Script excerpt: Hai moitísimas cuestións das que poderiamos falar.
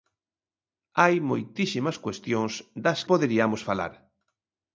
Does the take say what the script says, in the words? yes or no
no